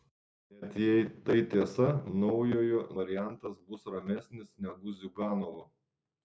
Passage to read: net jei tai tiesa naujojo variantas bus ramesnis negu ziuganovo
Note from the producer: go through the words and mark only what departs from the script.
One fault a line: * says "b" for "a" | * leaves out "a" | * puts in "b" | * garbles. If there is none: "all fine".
all fine